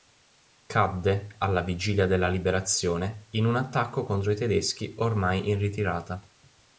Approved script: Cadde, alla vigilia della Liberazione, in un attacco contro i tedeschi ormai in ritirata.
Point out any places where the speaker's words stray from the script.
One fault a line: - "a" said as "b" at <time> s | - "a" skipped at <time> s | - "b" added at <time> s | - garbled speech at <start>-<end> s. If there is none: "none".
none